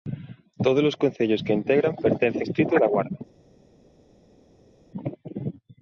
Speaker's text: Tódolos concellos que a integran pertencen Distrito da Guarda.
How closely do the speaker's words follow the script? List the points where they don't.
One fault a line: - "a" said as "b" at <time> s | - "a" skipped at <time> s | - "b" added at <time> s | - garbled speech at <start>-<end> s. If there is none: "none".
none